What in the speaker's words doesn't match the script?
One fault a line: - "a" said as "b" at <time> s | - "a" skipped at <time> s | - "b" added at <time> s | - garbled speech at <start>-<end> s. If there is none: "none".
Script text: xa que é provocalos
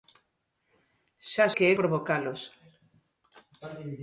none